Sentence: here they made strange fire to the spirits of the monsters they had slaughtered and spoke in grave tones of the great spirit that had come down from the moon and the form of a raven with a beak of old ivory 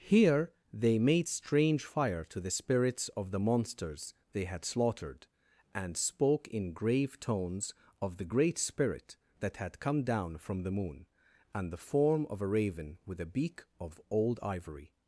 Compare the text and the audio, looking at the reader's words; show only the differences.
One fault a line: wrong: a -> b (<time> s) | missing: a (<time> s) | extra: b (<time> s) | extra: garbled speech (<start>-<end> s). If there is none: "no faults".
no faults